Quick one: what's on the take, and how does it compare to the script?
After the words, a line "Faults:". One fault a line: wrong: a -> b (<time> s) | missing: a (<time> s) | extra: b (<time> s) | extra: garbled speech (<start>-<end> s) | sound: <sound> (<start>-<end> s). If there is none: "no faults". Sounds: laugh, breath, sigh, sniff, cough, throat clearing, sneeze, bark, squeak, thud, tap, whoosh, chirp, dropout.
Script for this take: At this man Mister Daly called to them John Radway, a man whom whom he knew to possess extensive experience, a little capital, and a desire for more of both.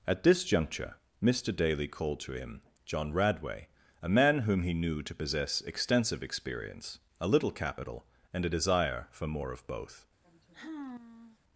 At this juncture Mister Daly called to him John Radway, a man whom he knew to possess extensive experience, a little capital, and a desire for more of both.
Faults:
wrong: man -> juncture (0.4 s)
wrong: them -> him (2.3 s)
missing: whom (4.6 s)
sound: sigh (10.2-11.4 s)